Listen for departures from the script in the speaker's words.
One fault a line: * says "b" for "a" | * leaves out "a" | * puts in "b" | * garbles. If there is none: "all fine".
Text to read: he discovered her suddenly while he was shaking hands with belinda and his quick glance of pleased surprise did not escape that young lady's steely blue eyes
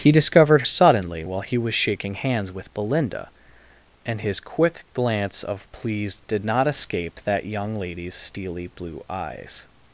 * leaves out "her"
* leaves out "surprise"